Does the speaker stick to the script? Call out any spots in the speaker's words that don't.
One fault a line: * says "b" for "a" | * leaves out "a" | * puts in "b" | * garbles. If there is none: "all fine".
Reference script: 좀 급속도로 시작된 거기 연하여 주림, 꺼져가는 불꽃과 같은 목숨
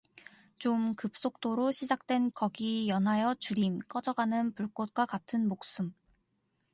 all fine